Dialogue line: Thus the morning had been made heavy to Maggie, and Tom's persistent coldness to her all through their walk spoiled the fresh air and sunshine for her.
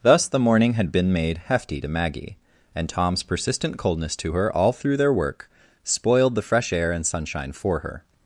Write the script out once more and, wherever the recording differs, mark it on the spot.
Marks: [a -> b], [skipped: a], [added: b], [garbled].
Thus the morning had been made [heavy -> hefty] to Maggie, and Tom's persistent coldness to her all through their [walk -> work] spoiled the fresh air and sunshine for her.